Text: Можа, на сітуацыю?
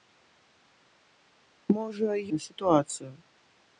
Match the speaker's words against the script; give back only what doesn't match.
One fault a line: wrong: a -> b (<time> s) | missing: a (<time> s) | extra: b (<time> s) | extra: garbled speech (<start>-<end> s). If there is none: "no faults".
no faults